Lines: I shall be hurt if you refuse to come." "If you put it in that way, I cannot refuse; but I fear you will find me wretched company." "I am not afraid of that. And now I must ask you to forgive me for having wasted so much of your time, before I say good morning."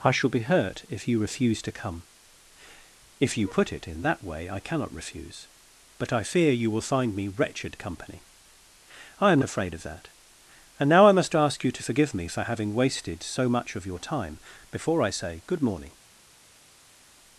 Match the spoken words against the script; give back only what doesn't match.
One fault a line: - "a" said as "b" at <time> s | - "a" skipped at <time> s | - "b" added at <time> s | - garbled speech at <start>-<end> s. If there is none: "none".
- "not" skipped at 9.4 s